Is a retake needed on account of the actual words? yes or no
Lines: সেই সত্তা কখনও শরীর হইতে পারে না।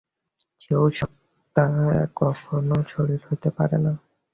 no